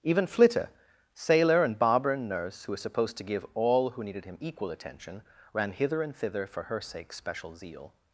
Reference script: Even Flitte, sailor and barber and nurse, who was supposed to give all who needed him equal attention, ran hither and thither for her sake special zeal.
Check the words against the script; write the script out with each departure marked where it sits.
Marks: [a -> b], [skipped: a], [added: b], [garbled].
Even Flitte, sailor and barber and nurse, who was supposed to give all who needed him equal attention, ran hither and thither for her sake special zeal.